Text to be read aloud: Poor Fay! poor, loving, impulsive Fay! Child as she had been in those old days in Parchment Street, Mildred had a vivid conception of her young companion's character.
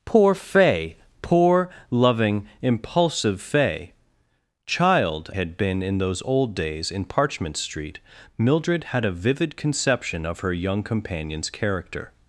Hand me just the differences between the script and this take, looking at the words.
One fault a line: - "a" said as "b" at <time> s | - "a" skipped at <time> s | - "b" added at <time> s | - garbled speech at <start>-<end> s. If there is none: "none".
- "as she" skipped at 5.3 s